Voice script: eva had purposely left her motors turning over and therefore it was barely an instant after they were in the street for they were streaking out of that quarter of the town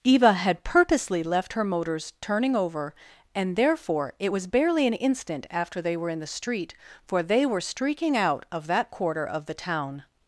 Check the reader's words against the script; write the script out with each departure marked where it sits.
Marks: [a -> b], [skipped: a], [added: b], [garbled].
eva had purposely left her motors turning over and therefore it was barely an instant after they were in the street for they were streaking out of that quarter of the town